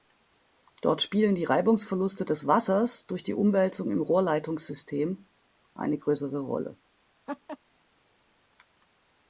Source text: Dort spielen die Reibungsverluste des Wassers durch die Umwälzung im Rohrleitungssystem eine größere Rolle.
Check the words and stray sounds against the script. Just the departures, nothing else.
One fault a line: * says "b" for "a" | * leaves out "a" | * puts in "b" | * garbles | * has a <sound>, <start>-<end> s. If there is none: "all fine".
* has a laugh, 7.3-7.6 s